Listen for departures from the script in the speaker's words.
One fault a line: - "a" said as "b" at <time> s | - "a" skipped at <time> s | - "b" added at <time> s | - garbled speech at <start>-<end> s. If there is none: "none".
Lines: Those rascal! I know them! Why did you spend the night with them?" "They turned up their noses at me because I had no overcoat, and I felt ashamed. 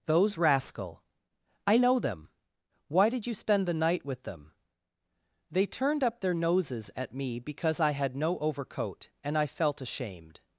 none